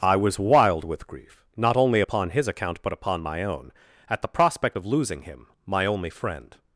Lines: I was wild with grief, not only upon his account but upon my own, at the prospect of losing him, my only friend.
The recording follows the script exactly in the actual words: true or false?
true